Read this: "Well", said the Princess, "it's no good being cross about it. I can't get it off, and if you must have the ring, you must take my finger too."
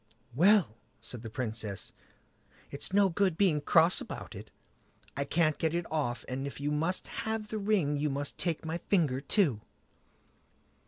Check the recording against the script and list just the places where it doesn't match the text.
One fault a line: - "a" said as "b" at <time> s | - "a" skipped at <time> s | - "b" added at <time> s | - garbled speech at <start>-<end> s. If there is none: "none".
none